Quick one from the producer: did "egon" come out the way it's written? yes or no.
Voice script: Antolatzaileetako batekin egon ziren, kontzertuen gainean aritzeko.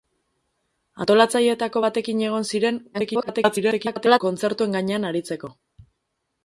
yes